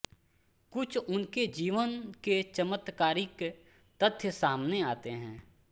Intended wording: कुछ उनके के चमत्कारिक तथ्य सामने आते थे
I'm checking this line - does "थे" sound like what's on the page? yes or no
no